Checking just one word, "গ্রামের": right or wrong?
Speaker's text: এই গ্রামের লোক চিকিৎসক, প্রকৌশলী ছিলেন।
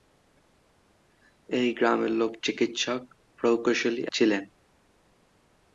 right